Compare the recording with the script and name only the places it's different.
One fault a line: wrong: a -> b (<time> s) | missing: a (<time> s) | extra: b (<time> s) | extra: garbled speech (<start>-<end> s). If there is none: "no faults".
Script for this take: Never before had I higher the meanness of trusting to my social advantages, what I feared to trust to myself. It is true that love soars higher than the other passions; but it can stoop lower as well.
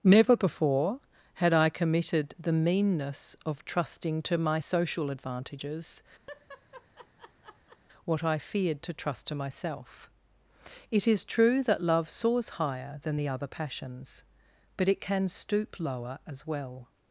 wrong: higher -> committed (1.7 s)